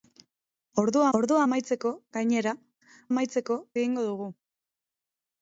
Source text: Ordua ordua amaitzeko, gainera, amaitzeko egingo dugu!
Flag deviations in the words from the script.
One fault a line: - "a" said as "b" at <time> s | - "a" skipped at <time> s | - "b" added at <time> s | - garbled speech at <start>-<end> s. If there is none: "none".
none